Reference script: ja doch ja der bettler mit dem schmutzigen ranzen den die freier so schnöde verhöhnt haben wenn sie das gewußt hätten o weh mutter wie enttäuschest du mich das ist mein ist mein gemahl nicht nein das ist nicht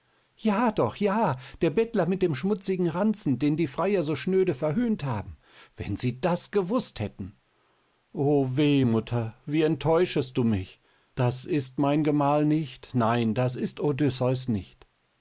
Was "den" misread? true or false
false